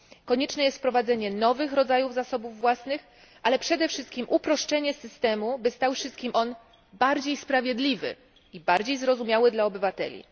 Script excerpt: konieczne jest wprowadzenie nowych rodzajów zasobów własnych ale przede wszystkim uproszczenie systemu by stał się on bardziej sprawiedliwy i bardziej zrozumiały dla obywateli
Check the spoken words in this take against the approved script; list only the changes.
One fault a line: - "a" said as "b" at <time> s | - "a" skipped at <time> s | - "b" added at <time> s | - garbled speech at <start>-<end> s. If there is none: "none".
- "się" said as "wszystkim" at 5.9 s